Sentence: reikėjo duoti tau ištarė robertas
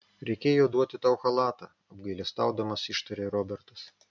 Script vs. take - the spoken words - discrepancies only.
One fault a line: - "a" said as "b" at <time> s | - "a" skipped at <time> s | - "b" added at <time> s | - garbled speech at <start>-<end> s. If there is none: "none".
- "chalatą apgailestaudamas" added at 1.2 s